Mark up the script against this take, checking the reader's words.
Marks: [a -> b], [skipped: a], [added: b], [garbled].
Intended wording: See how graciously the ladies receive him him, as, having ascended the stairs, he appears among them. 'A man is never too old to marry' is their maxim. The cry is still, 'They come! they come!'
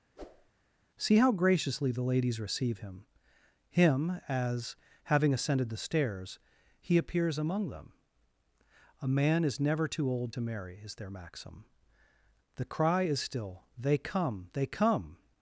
See how graciously the ladies receive him him, as, having ascended the stairs, he appears among them. 'A man is never too old to marry' is their maxim. The cry is still, 'They come! they come!'